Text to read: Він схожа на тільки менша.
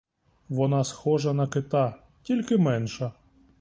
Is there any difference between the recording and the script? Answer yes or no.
yes